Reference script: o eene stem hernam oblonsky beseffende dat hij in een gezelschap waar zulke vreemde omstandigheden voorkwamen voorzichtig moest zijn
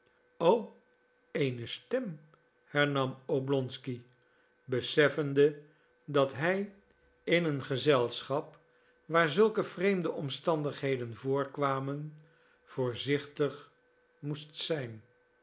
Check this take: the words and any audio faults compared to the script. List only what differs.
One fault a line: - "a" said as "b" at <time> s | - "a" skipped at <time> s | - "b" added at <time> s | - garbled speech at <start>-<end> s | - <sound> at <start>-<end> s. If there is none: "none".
none